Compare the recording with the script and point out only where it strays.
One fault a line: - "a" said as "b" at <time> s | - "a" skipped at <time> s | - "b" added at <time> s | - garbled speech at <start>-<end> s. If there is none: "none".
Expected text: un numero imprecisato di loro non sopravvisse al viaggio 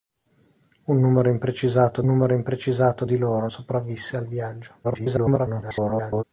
- "numero imprecisato" added at 2.0 s
- "non" skipped at 3.5 s
- garbled speech at 4.8-6.2 s